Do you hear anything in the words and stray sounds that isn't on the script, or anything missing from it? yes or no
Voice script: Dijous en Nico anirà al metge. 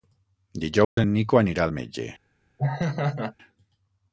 yes